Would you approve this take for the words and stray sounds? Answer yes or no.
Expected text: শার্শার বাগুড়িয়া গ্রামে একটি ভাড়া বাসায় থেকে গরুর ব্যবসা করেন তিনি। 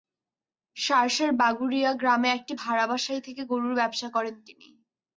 yes